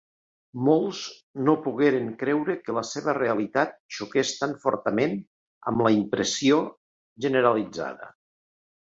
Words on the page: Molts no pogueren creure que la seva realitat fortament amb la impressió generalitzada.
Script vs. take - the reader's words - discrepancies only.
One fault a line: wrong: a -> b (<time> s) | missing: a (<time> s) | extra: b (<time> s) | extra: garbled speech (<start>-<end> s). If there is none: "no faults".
extra: xoqués tan (4.0 s)